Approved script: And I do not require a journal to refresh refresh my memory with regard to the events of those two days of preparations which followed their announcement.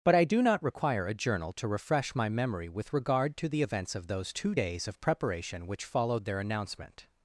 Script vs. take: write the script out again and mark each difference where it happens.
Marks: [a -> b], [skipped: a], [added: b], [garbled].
[And -> But] I do not require a journal to refresh [skipped: refresh] my memory with regard to the events of those two days of [preparations -> preparation] which followed their announcement.